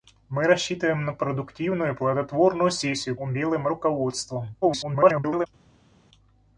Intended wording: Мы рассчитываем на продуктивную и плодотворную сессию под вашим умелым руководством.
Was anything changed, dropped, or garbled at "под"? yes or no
yes